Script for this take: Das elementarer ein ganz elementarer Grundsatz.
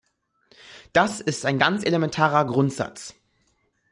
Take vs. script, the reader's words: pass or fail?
fail